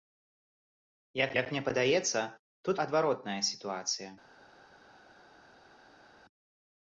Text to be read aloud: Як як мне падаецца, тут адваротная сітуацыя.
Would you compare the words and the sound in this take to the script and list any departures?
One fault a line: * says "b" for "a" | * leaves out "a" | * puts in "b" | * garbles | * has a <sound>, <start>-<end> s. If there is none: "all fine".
all fine